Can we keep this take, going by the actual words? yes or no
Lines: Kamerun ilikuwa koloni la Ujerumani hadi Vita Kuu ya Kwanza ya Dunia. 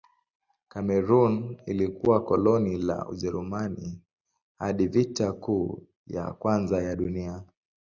yes